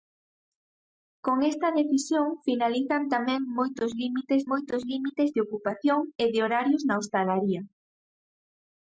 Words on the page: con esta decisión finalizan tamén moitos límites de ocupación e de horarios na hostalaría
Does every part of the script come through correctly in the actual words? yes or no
no